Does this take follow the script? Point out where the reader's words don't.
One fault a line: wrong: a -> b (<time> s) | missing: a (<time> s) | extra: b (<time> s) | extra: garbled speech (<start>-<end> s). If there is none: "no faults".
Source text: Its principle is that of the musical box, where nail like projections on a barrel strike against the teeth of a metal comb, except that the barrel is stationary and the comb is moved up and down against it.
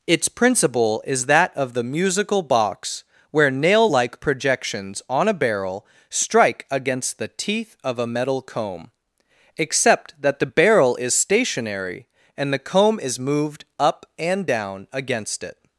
no faults